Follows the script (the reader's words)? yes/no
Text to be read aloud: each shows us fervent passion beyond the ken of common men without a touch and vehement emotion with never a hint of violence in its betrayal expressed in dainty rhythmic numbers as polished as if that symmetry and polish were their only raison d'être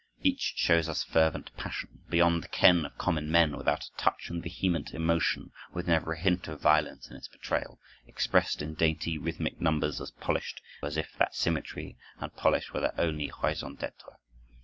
yes